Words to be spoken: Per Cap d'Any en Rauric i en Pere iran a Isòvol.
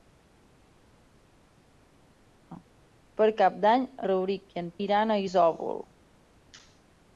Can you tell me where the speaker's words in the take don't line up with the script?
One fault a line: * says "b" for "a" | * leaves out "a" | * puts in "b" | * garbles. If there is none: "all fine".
* leaves out "en"
* leaves out "Pere"